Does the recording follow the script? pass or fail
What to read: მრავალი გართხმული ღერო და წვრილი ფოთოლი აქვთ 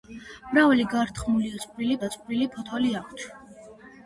fail